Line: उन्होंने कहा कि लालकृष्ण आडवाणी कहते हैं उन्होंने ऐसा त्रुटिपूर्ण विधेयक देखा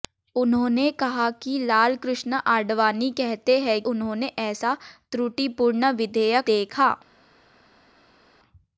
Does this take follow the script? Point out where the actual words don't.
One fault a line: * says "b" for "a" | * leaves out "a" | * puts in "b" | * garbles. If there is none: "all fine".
all fine